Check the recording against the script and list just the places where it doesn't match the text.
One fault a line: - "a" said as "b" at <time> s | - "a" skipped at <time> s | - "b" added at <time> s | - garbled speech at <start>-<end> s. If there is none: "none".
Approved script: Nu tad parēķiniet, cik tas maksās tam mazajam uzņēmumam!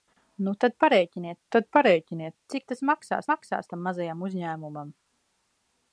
- "tad parēķiniet" added at 1.5 s
- "maksās" added at 3.3 s